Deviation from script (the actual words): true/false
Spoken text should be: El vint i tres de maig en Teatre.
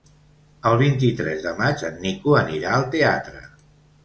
true